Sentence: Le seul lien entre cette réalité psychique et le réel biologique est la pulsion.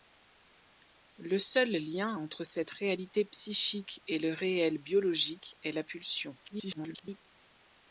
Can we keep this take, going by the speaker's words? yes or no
no